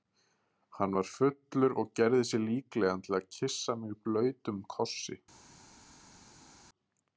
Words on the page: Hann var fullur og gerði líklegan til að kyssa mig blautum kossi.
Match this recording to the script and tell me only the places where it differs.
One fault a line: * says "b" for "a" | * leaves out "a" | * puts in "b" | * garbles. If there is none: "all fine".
* puts in "sig"